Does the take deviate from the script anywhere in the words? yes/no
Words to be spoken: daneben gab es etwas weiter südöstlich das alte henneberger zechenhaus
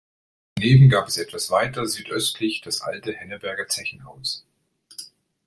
no